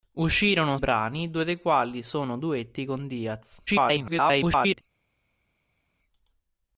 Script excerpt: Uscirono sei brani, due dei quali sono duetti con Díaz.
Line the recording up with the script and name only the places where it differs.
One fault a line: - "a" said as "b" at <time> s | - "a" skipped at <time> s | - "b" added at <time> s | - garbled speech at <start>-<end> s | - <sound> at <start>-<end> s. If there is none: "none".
- "sei" skipped at 0.8 s
- garbled speech at 3.7-4.8 s